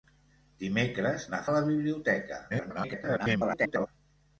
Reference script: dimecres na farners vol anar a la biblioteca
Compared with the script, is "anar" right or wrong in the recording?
wrong